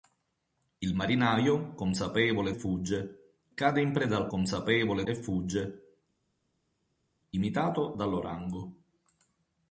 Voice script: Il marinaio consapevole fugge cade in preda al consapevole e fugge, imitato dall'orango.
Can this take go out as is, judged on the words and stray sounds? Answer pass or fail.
pass